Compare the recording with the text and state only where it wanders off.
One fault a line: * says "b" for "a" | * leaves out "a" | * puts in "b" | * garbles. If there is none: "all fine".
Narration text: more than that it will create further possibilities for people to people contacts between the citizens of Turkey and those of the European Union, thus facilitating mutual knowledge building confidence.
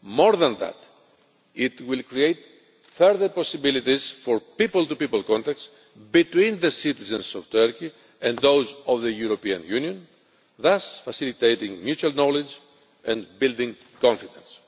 * puts in "and"